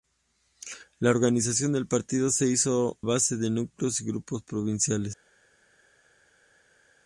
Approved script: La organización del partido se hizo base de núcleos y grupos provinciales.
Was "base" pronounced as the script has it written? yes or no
yes